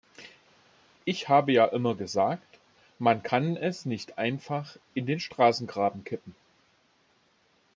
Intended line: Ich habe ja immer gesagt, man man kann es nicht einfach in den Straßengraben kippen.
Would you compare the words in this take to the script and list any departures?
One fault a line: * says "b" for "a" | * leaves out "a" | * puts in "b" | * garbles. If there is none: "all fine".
* leaves out "man"